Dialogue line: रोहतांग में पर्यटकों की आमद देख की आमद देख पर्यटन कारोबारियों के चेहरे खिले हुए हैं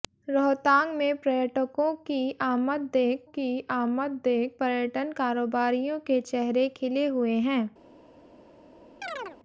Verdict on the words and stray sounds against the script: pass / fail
fail